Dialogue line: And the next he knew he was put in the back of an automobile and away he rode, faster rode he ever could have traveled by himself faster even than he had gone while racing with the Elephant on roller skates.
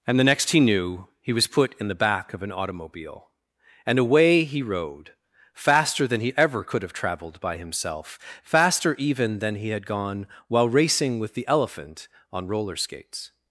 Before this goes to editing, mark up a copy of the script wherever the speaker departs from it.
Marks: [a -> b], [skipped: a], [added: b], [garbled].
And the next he knew he was put in the back of an automobile and away he rode, faster [rode -> than] he ever could have traveled by himself faster even than he had gone while racing with the Elephant on roller skates.